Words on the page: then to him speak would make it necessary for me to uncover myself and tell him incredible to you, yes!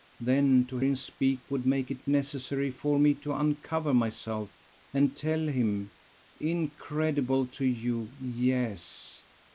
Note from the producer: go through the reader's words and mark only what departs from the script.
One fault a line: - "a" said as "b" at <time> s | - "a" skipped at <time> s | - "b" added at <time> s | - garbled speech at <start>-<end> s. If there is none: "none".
none